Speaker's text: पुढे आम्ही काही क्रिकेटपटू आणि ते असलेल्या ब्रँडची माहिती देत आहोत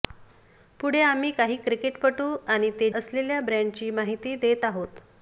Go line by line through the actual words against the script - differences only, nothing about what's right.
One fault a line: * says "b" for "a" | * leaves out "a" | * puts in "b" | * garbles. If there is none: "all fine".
all fine